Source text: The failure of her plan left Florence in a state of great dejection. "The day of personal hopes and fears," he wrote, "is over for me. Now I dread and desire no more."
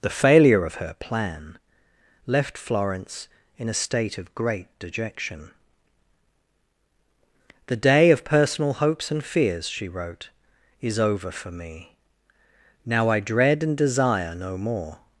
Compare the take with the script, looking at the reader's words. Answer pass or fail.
fail